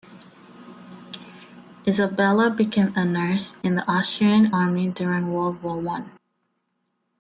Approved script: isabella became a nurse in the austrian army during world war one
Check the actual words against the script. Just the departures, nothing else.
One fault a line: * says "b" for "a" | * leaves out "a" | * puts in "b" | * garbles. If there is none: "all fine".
all fine